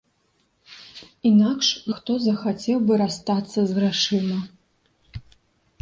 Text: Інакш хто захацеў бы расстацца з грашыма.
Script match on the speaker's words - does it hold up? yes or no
yes